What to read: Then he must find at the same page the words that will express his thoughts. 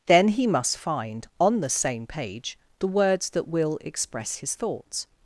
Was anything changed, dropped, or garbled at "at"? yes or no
yes